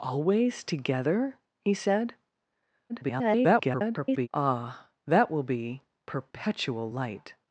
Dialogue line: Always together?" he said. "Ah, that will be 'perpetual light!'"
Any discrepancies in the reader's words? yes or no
yes